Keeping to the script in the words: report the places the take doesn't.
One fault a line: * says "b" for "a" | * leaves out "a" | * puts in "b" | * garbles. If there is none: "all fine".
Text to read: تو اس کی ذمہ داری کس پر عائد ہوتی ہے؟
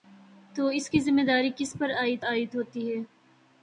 * puts in "عائد"